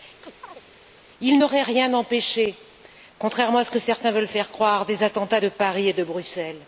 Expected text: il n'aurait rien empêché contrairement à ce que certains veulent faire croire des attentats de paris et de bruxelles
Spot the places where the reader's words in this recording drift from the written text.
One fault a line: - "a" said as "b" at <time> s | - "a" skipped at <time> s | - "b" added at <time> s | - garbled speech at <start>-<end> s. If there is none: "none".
none